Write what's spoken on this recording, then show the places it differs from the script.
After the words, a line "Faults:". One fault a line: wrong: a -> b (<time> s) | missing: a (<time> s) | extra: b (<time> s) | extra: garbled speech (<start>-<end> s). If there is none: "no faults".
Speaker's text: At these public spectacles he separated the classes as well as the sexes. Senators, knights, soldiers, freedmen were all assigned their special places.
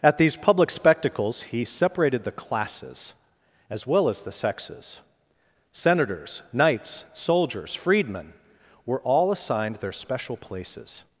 At these public spectacles he separated the classes as well as the sexes. Senators, knights, soldiers, freedmen were all assigned their special places.
Faults:
no faults